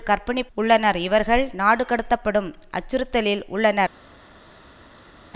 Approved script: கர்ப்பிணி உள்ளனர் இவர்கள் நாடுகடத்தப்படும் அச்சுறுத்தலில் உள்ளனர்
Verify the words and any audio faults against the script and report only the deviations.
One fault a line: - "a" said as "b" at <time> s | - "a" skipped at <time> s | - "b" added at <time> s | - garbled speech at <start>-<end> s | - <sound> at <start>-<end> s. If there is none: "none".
none